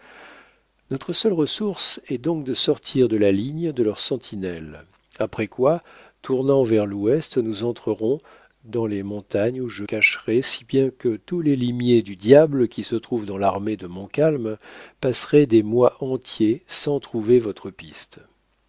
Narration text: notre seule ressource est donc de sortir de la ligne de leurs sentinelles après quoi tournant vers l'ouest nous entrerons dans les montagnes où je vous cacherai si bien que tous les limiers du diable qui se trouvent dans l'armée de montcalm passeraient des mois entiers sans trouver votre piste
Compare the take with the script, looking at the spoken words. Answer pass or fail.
fail